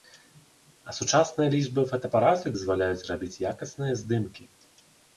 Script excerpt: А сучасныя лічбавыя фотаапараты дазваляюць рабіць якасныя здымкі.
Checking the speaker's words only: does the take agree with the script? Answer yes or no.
yes